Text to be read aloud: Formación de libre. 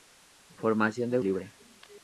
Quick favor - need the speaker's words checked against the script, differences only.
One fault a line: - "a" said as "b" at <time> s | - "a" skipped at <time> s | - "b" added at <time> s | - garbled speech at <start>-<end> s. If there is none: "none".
none